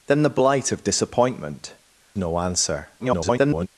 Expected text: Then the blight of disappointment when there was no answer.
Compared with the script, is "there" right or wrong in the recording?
wrong